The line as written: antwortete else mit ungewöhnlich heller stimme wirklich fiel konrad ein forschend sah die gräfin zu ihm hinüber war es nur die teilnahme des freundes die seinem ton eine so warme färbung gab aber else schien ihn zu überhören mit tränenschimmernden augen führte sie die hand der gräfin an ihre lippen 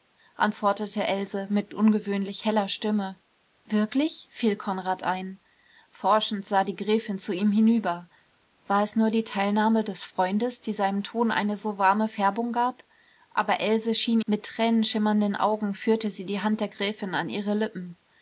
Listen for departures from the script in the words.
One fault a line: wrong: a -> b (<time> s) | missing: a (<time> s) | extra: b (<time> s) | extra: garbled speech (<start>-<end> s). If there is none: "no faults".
missing: ihn zu überhören (14.2 s)